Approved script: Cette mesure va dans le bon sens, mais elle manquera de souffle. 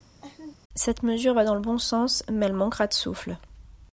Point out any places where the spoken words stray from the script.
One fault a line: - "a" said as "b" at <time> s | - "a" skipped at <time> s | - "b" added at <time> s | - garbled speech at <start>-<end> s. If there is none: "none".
none